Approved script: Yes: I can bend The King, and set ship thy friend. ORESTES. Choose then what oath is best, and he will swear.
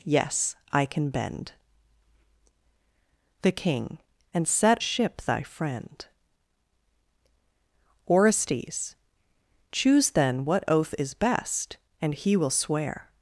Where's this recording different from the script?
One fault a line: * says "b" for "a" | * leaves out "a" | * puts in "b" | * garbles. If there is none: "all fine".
all fine